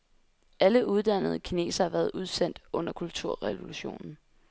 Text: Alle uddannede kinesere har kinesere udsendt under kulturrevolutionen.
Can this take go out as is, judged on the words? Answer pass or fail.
fail